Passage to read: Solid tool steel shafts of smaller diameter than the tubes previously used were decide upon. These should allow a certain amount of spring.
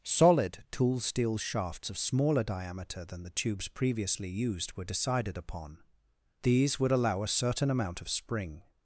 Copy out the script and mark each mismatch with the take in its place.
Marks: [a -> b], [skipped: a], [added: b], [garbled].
Solid tool steel shafts of smaller diameter than the tubes previously used were [decide -> decided] upon. These [should -> would] allow a certain amount of spring.